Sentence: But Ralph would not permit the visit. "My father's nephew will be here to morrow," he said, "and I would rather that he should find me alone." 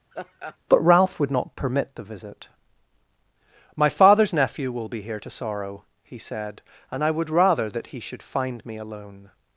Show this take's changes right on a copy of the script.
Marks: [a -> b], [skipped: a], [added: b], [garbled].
But Ralph would not permit the visit. "My father's nephew will be here to [morrow," -> sorrow] he said, "and I would rather that he should find me alone."